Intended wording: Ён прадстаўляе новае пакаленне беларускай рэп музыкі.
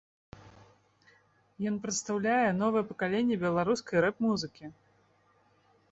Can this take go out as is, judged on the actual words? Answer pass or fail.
pass